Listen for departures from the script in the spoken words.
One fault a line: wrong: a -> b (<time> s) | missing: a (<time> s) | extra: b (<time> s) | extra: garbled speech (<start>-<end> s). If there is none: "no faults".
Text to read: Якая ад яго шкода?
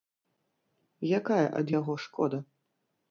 no faults